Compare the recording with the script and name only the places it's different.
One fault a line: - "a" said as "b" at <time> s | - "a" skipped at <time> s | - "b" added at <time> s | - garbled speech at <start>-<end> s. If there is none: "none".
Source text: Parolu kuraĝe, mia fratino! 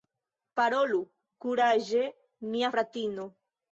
none